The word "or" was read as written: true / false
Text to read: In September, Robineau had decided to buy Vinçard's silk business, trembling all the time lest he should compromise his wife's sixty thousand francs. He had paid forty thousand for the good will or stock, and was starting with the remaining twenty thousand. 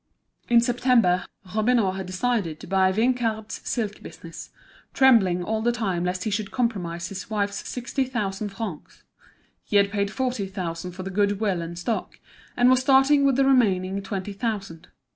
false